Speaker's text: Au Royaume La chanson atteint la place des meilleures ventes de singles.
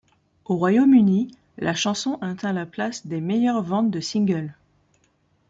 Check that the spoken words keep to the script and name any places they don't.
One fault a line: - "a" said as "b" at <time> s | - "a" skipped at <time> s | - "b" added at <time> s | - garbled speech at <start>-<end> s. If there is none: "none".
- "Uni" added at 0.9 s